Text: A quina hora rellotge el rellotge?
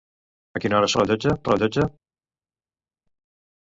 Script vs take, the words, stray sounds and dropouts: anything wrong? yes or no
no